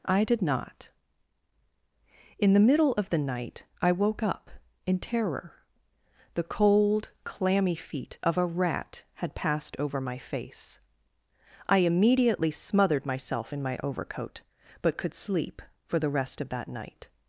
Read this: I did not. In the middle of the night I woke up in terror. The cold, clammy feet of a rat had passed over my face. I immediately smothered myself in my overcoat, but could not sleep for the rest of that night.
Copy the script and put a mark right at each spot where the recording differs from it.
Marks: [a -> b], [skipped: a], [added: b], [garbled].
I did not. In the middle of the night I woke up in terror. The cold, clammy feet of a rat had passed over my face. I immediately smothered myself in my overcoat, but could [skipped: not] sleep for the rest of that night.